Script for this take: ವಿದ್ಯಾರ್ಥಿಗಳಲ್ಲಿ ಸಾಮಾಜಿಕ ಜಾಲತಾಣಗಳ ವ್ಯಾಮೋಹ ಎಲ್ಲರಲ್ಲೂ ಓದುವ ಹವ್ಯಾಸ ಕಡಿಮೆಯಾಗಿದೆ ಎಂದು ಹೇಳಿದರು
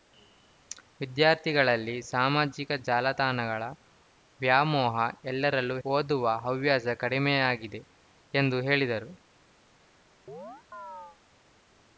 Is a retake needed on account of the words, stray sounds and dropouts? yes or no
yes